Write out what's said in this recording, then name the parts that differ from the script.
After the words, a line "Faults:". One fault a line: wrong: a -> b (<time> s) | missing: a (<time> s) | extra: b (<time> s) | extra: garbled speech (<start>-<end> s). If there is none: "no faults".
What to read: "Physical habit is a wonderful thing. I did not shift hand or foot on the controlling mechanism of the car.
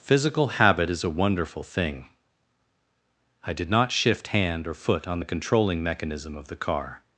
"Physical habit is a wonderful thing. I did not shift hand or foot on the controlling mechanism of the car.
Faults:
no faults